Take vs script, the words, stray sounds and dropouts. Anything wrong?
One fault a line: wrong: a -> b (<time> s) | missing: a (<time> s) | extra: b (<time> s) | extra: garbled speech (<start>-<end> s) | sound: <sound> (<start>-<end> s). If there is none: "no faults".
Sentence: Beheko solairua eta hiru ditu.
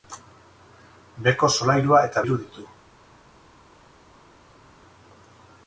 no faults